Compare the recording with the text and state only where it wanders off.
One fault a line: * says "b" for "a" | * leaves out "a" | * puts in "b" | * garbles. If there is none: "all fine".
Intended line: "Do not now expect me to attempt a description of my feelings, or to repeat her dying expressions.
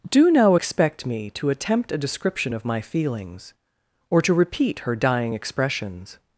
* leaves out "not"